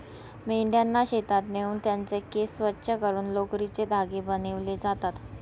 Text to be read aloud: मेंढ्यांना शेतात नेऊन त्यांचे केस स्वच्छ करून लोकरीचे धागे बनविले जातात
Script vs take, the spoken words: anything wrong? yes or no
no